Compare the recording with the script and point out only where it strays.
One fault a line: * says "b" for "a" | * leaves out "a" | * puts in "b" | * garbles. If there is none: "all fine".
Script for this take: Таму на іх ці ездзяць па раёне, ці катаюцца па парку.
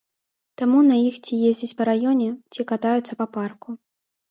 all fine